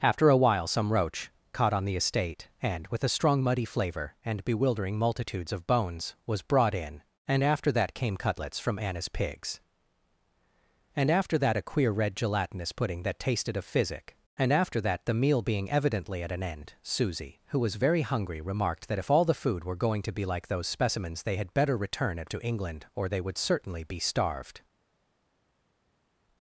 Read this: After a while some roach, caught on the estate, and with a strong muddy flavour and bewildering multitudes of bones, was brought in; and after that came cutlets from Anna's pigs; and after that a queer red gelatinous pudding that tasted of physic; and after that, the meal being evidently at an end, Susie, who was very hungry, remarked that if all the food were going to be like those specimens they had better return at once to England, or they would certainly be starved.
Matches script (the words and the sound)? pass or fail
fail